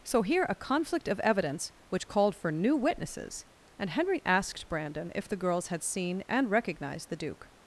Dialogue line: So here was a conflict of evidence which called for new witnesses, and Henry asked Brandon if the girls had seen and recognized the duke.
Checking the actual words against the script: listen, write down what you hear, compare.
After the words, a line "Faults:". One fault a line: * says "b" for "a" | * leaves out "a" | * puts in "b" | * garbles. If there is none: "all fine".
So here a conflict of evidence which called for new witnesses, and Henry asked Brandon if the girls had seen and recognized the duke.
Faults:
* leaves out "was"